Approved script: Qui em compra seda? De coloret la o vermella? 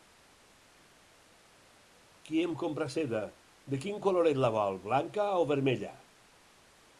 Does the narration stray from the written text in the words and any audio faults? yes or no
yes